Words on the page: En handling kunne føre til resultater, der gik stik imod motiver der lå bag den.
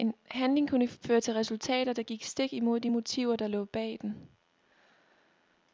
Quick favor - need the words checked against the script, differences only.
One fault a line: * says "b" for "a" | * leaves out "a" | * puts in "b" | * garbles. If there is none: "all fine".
* puts in "de"